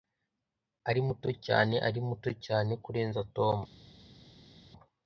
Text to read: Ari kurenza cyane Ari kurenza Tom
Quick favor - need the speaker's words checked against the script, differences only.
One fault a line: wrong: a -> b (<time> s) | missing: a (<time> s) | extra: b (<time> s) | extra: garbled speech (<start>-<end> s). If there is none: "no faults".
wrong: kurenza -> muto (1.1 s)
extra: muto cyane (2.1 s)